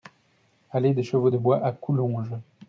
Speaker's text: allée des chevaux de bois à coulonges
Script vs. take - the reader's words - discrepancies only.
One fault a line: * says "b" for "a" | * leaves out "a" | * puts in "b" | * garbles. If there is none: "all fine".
all fine